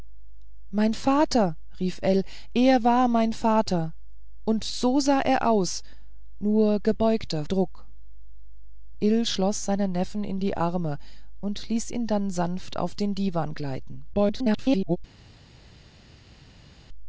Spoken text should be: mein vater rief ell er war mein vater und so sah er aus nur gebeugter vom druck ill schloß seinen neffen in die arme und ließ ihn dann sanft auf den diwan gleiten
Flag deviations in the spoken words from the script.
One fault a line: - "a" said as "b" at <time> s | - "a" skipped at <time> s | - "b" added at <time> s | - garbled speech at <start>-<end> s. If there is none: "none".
- "vom" skipped at 7.5 s
- garbled speech at 14.1-15.0 s